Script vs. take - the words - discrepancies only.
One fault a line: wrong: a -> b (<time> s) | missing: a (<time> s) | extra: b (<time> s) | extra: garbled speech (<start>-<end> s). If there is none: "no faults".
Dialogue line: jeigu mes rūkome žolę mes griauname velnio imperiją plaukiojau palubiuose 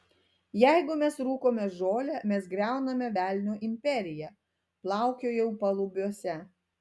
no faults